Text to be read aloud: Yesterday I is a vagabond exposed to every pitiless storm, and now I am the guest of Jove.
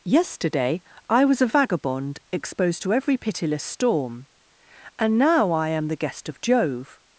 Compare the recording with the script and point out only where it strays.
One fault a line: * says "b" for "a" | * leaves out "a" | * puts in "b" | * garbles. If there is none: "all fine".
* says "was" for "is"